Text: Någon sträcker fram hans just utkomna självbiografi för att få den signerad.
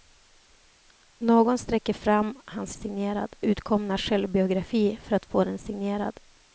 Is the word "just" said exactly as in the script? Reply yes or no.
no